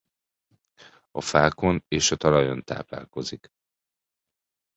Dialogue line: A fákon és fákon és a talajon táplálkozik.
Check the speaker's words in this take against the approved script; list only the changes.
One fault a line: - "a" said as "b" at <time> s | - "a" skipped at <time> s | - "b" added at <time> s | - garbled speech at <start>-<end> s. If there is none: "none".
- "fákon és" skipped at 2.1 s